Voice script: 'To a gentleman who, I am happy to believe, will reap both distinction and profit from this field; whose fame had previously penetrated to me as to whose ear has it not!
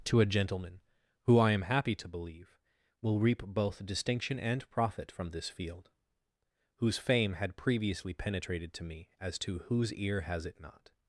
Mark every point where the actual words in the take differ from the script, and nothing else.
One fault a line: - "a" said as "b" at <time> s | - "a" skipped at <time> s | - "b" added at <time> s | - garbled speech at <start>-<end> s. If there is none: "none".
none